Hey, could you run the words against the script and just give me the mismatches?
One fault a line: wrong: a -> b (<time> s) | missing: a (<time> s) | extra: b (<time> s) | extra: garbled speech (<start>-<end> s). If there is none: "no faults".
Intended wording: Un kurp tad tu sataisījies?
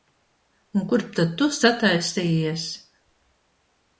no faults